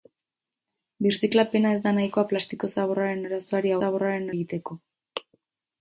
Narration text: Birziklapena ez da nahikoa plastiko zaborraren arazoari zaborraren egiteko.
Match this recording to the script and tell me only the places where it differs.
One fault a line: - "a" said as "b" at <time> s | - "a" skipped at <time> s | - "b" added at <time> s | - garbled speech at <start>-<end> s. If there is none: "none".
none